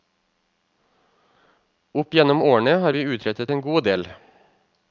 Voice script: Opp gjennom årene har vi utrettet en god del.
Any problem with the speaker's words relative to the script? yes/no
no